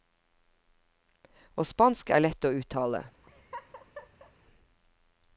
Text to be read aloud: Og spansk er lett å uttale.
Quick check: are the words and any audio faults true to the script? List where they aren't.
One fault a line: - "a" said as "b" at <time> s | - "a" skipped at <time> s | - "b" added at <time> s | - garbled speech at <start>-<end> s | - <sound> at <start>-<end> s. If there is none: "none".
- laugh at 3.2-4.3 s